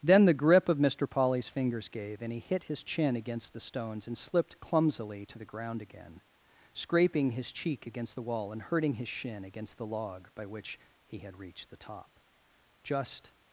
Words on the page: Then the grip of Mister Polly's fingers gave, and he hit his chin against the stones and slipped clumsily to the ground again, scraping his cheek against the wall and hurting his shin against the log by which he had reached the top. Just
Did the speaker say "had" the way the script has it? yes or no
yes